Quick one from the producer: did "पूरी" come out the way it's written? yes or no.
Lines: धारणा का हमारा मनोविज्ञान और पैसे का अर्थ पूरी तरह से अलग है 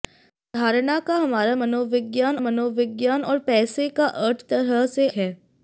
no